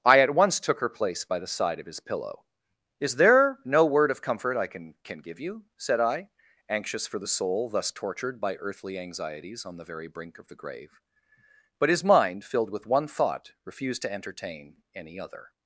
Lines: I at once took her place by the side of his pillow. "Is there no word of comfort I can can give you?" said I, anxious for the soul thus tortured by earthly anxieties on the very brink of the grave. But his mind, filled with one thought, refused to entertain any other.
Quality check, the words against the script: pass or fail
pass